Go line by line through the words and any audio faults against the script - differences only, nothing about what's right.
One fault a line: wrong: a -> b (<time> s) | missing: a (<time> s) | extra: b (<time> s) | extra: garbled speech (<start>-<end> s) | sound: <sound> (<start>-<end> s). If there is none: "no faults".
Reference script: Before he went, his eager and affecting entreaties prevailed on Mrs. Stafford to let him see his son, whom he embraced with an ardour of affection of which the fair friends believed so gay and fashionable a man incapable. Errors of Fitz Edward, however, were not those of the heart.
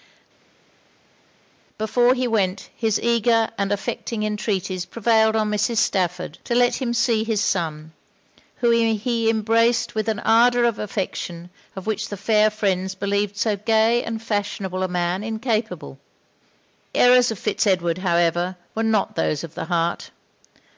no faults